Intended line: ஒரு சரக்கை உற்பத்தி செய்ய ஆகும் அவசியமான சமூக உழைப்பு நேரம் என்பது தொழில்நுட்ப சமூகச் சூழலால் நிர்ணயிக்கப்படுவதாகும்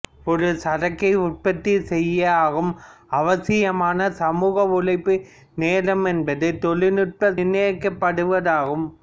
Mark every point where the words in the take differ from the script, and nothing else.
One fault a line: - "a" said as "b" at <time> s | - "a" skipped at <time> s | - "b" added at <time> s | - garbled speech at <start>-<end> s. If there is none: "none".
- "சமூகச் சூழலால்" skipped at 7.3 s